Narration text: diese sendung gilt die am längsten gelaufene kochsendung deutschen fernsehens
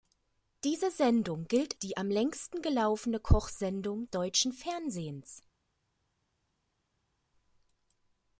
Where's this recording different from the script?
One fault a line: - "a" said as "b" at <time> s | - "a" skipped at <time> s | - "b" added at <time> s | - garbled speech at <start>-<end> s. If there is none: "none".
none